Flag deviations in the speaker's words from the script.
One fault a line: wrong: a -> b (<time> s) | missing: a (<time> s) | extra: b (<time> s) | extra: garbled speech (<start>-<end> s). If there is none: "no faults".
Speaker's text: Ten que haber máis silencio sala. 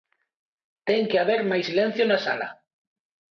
extra: na (2.1 s)